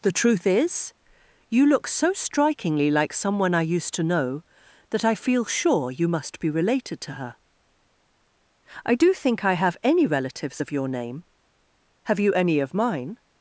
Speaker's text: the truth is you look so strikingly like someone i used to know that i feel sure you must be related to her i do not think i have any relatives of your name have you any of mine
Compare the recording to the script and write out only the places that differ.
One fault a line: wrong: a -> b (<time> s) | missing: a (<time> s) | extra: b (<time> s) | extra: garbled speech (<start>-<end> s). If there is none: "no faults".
missing: not (9.1 s)